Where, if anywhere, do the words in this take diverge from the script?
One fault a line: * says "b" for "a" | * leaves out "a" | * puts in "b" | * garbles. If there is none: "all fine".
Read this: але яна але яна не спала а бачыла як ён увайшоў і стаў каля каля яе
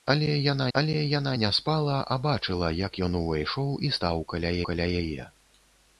all fine